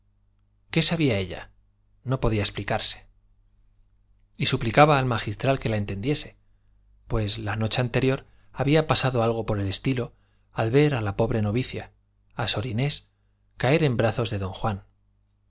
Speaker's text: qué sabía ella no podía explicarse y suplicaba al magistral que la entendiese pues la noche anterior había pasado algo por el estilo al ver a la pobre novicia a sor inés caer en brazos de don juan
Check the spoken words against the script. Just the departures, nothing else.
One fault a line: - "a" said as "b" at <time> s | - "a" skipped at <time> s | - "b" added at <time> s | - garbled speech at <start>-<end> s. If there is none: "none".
none